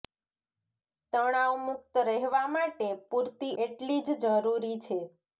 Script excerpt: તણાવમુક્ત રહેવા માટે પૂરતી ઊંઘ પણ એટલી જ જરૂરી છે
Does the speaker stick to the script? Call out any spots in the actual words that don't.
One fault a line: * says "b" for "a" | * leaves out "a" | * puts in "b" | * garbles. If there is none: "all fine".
* leaves out "ઊંઘ પણ"